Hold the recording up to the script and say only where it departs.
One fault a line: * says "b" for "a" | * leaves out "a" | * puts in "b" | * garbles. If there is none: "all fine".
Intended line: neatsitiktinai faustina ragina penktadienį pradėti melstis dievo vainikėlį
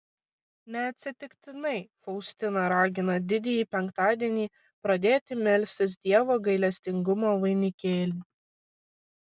* puts in "didįjį"
* puts in "gailestingumo"